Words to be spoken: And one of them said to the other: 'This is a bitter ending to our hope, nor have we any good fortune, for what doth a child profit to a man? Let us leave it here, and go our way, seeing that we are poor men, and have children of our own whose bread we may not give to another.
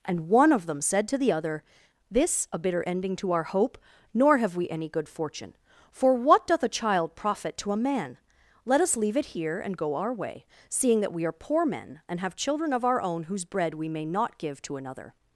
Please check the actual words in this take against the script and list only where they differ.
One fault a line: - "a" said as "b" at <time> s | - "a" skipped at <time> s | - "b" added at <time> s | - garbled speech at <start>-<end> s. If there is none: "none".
- "is" skipped at 2.5 s